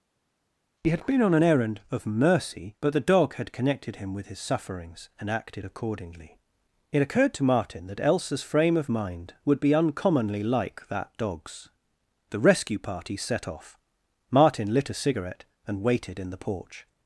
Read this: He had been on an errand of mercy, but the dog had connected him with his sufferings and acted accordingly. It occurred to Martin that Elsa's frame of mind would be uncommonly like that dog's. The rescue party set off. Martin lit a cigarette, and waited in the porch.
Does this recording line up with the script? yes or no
yes